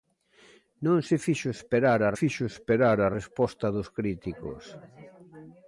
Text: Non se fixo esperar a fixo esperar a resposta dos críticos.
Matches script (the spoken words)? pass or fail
pass